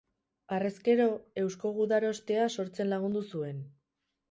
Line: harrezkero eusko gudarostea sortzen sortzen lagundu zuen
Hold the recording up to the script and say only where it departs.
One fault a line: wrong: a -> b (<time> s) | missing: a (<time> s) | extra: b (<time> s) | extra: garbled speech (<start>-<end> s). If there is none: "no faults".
missing: sortzen (2.9 s)